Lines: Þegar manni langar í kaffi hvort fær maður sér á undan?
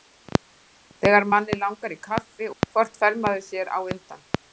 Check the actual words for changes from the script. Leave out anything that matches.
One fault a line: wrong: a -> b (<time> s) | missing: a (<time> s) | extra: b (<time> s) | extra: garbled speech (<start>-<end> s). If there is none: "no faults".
no faults